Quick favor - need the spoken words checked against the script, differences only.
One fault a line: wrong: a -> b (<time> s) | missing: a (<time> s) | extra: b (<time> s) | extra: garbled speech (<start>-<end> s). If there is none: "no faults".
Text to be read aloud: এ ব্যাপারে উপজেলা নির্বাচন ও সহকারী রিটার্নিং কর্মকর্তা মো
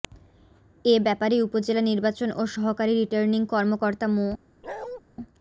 no faults